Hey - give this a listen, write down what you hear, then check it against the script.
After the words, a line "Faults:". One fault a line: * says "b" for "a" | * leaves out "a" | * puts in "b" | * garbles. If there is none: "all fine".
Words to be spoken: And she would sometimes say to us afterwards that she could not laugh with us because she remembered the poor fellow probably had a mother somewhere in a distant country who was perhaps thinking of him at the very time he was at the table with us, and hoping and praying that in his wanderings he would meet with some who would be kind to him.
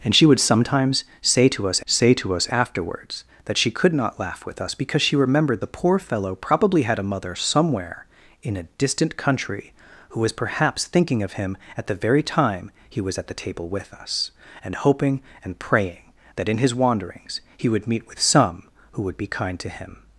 And she would sometimes say to us say to us afterwards that she could not laugh with us because she remembered the poor fellow probably had a mother somewhere in a distant country who was perhaps thinking of him at the very time he was at the table with us, and hoping and praying that in his wanderings he would meet with some who would be kind to him.
Faults:
* puts in "say to us"